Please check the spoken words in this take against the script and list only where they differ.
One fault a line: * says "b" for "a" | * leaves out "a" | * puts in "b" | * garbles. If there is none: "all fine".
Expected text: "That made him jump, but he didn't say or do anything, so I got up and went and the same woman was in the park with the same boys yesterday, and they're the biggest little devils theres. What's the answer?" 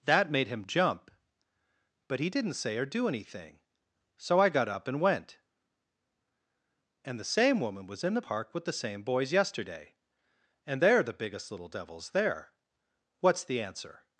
* says "there" for "theres"